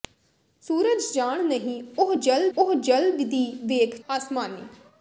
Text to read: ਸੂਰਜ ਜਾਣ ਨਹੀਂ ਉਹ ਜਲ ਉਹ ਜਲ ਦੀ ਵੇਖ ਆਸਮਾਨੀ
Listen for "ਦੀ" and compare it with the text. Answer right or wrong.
right